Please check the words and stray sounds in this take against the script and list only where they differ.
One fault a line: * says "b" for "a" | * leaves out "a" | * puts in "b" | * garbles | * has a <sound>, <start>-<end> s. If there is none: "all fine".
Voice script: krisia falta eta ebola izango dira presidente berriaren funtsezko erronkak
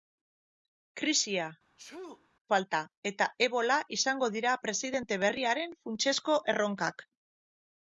* has a sneeze, 1.8-2.3 s